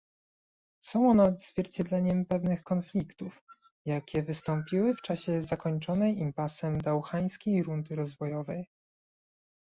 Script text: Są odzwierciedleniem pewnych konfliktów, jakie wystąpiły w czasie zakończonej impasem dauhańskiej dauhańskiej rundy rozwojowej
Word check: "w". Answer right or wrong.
right